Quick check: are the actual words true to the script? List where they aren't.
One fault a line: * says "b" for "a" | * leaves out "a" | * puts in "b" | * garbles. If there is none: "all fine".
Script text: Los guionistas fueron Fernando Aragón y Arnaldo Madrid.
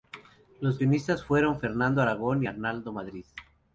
all fine